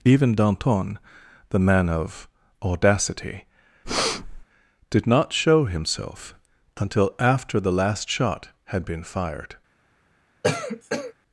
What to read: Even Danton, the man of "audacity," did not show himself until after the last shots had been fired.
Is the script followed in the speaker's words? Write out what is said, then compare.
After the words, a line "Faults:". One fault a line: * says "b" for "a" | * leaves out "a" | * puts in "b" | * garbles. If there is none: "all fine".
Even Danton, the man of "audacity," did not show himself until after the last shot had been fired.
Faults:
* says "shot" for "shots"